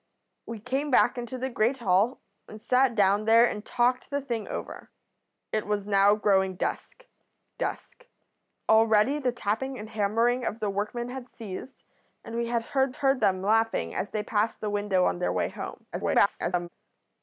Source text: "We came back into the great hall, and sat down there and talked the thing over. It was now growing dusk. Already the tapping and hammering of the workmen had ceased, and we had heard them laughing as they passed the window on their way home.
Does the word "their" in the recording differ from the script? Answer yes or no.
no